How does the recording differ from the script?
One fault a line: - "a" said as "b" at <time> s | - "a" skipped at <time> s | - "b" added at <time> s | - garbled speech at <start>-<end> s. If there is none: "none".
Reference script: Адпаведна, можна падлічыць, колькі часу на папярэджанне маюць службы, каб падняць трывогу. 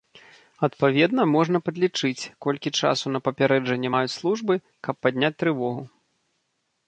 none